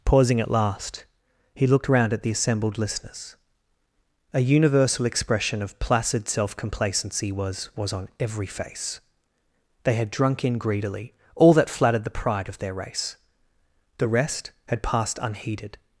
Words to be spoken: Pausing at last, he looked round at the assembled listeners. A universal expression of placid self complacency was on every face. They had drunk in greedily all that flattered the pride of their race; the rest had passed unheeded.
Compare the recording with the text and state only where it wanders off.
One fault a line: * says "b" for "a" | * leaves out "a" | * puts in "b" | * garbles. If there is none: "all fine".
* puts in "was"